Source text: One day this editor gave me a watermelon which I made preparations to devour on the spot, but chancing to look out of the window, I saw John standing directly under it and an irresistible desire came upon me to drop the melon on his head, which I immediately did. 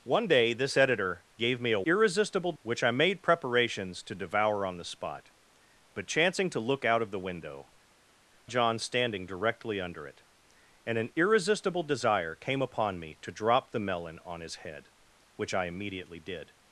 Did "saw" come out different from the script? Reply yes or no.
yes